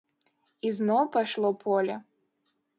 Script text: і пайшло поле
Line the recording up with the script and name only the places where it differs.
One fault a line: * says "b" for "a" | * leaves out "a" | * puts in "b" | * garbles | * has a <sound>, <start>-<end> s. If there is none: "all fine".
* puts in "зноў"